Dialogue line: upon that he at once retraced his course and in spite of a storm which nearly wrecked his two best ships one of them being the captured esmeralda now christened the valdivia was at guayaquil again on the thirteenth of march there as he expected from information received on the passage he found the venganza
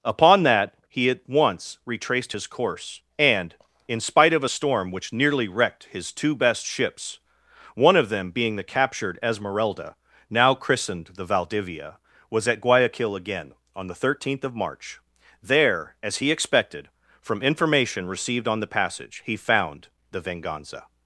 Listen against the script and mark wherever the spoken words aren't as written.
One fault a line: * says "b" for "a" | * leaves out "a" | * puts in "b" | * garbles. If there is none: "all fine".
all fine